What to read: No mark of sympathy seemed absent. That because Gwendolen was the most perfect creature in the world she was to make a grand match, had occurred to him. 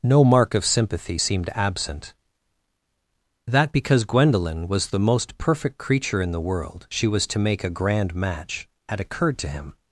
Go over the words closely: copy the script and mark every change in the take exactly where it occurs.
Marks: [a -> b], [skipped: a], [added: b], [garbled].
No mark of sympathy seemed absent. That because Gwendolen was the most perfect creature in the world she was to make a grand match, had occurred to him.